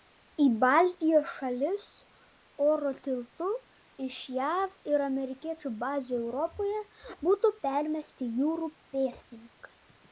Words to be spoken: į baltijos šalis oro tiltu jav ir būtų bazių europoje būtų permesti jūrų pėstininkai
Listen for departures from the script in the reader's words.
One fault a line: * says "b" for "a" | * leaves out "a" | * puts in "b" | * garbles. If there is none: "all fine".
* puts in "iš"
* says "amerikiečių" for "būtų"